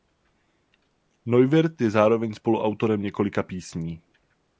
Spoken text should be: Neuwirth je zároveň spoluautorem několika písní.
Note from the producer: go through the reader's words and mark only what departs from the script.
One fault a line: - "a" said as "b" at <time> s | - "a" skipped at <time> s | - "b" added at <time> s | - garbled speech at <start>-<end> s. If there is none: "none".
none